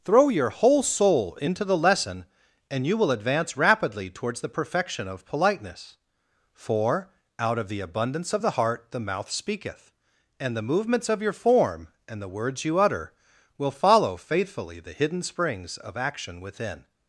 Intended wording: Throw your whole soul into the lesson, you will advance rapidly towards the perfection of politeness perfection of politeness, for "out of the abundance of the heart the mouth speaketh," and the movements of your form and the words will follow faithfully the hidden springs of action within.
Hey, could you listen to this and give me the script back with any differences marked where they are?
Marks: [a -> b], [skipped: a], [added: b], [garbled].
Throw your whole soul into the lesson, [added: and] you will advance rapidly towards the perfection of politeness [skipped: perfection of politeness,] for "out of the abundance of the heart the mouth speaketh," and the movements of your form and the words [added: you utter] will follow faithfully the hidden springs of action within.